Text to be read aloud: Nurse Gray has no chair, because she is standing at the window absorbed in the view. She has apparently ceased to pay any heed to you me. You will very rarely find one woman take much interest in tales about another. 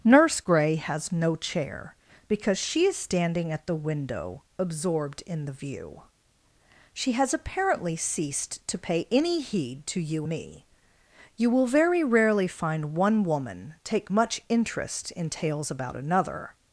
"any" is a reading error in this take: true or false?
false